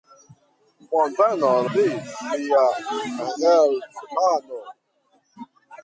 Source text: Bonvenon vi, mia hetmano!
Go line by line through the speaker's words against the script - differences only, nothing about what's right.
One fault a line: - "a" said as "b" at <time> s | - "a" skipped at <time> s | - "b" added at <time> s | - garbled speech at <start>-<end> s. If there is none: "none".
none